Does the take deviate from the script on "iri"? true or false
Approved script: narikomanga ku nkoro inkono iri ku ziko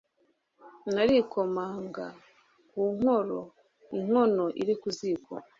false